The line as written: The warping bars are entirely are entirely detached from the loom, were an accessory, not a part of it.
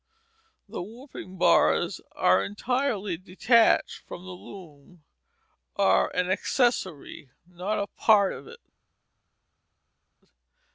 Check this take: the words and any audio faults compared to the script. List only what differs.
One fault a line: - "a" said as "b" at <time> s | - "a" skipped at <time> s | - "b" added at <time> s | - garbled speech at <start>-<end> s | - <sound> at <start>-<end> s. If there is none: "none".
- "are entirely" skipped at 3.2 s
- "were" said as "are" at 5.8 s